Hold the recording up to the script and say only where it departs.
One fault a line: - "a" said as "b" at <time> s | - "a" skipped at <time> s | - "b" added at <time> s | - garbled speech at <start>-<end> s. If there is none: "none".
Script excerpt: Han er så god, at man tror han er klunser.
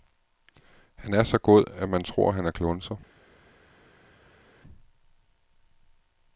none